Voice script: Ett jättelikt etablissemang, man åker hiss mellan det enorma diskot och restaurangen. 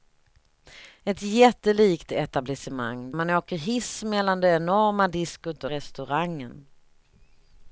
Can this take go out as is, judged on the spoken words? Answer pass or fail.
pass